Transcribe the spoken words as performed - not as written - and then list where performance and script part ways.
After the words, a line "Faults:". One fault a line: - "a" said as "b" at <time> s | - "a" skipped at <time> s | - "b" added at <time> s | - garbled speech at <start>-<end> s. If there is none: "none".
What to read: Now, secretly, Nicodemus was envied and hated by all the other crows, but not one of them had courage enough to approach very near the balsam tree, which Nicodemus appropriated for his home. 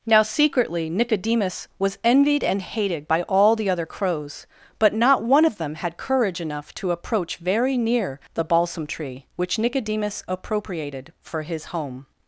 Now, secretly, Nicodemus was envied and hated by all the other crows, but not one of them had courage enough to approach very near the balsam tree, which Nicodemus appropriated for his home.
Faults:
none